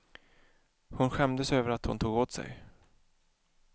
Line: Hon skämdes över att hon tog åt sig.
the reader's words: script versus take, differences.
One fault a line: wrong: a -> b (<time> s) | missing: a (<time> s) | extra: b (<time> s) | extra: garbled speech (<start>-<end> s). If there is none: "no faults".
no faults